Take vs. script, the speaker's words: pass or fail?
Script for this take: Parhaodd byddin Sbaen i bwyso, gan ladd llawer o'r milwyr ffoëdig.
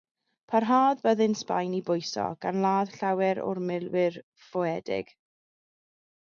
pass